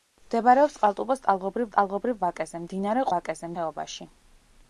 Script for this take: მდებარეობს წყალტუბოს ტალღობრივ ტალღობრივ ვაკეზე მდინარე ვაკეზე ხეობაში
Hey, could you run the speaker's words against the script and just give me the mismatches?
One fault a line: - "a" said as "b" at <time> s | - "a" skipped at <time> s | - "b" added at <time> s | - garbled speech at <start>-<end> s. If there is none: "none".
none